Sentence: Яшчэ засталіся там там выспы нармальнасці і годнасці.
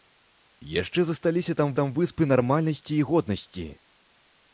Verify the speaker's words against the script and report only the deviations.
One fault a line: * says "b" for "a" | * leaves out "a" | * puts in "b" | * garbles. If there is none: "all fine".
all fine